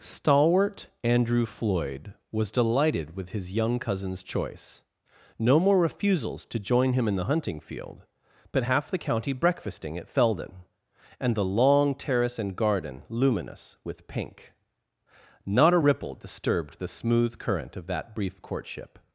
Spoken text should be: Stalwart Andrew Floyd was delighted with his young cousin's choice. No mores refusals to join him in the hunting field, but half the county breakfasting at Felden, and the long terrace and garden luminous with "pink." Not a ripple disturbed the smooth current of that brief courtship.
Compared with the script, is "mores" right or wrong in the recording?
wrong